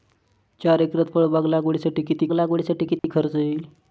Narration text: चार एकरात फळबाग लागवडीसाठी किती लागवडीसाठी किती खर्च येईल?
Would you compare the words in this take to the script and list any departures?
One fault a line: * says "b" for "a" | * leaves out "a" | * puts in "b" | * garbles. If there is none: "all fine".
all fine